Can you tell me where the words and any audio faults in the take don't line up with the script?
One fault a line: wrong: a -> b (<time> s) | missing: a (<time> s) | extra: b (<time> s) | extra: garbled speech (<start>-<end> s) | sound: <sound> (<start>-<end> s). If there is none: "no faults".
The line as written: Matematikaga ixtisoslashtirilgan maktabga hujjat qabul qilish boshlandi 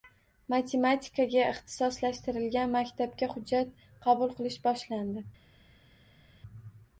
no faults